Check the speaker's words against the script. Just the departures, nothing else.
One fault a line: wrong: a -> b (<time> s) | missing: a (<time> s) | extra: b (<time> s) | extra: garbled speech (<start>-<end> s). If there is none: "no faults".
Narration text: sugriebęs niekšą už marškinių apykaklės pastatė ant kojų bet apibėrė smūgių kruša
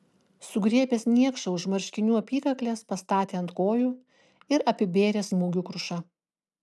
wrong: bet -> ir (4.6 s)